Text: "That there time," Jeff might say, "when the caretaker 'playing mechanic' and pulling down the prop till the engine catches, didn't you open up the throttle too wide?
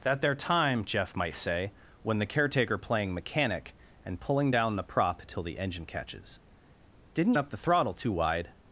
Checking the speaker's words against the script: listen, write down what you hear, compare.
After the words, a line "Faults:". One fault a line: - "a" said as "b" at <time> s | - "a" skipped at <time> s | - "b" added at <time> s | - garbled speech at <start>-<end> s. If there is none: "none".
"That there time," Jeff might say, "when the caretaker 'playing mechanic' and pulling down the prop till the engine catches, didn't up the throttle too wide?
Faults:
- "you open" skipped at 7.3 s